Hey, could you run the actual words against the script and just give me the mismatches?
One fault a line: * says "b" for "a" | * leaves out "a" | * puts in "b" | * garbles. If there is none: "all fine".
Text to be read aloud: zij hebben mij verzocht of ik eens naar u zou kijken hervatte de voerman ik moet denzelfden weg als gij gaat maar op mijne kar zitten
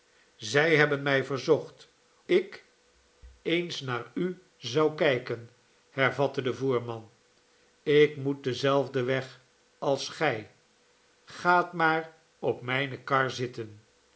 * leaves out "of"